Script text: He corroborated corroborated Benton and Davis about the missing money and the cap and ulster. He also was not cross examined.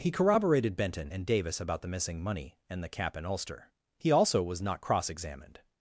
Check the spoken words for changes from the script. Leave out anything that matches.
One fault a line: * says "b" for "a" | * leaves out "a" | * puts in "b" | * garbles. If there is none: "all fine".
* leaves out "corroborated"